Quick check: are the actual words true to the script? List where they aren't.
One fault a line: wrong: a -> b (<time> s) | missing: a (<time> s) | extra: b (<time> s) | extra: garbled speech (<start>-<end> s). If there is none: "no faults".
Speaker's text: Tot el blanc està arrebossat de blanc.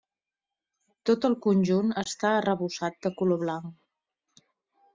wrong: blanc -> conjunt (1.5 s)
extra: color (3.2 s)